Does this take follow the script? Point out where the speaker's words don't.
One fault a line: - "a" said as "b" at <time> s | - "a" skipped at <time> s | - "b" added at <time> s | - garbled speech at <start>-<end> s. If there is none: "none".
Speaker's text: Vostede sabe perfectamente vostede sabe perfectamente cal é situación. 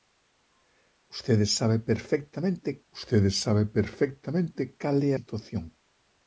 none